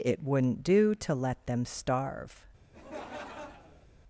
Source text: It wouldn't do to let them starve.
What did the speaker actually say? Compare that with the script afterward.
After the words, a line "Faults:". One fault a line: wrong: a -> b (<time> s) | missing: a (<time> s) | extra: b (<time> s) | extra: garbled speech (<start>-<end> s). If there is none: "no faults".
It wouldn't do to let them starve.
Faults:
no faults